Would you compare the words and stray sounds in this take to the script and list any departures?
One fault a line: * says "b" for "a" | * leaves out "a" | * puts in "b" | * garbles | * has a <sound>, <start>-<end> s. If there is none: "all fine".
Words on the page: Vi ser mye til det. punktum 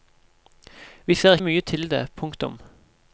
all fine